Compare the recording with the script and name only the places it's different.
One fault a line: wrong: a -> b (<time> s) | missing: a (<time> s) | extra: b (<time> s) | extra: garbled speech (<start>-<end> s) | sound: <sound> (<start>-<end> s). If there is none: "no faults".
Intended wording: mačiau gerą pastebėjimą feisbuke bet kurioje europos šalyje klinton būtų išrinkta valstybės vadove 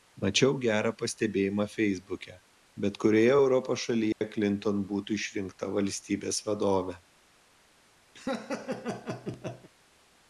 sound: dropout (4.1-4.2 s)
sound: laugh (8.1-9.7 s)